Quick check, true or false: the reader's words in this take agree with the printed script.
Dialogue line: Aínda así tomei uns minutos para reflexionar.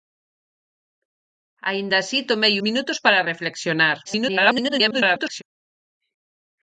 false